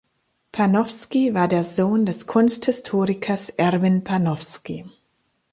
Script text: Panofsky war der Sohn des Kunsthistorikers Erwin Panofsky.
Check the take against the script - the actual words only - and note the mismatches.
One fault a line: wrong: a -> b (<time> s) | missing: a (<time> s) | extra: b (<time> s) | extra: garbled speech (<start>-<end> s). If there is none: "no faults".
no faults